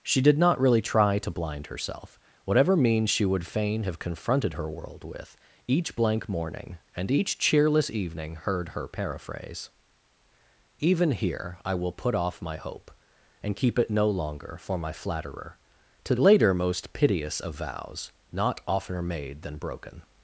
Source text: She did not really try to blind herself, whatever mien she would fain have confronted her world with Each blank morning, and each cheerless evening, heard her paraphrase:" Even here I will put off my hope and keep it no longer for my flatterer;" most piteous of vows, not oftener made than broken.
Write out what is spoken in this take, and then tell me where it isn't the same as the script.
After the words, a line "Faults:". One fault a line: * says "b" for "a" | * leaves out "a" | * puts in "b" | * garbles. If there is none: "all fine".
She did not really try to blind herself, whatever means she would fain have confronted her world with Each blank morning, and each cheerless evening, heard her paraphrase:" Even here I will put off my hope and keep it no longer for my flatterer;" to later most piteous of vows, not oftener made than broken.
Faults:
* says "means" for "mien"
* puts in "to later"